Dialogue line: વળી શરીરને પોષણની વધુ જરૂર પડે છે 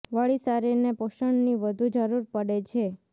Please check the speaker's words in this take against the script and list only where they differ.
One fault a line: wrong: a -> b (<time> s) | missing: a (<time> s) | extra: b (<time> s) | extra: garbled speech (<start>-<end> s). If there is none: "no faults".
no faults